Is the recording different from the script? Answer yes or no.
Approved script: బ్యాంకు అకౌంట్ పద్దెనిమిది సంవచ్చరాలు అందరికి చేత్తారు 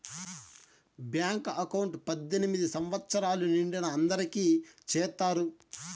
yes